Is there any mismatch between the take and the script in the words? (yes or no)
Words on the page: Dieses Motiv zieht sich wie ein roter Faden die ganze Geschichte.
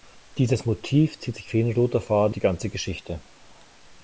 no